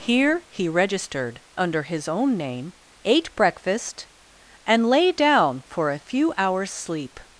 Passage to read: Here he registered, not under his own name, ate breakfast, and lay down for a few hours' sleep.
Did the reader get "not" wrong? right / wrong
wrong